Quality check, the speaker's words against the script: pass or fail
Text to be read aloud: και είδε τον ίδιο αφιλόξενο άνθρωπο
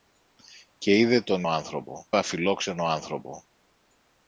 fail